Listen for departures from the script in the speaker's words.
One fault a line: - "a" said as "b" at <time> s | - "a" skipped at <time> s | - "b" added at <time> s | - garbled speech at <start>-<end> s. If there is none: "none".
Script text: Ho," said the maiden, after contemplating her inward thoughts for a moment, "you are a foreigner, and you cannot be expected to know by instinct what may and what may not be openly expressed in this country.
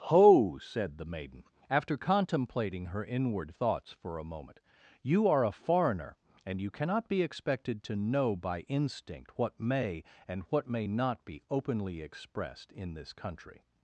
none